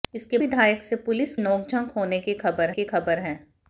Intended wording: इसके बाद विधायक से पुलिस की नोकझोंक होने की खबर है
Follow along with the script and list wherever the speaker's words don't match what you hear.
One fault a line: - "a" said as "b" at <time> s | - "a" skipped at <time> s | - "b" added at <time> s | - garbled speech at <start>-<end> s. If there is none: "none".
- "बाद" skipped at 0.4 s
- "की" skipped at 1.3 s
- "की खबर" added at 2.7 s